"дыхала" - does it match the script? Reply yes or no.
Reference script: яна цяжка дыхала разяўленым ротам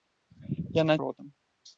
no